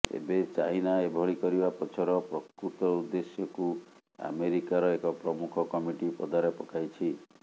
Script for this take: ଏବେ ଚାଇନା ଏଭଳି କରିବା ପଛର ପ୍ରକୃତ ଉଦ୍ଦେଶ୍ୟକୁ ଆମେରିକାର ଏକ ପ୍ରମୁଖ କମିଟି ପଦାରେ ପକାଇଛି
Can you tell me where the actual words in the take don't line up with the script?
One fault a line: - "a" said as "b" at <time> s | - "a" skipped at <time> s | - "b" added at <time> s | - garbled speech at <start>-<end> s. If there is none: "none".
none